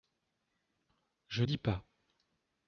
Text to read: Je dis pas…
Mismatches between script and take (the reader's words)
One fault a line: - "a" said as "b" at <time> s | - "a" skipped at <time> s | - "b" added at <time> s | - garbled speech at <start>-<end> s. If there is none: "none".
none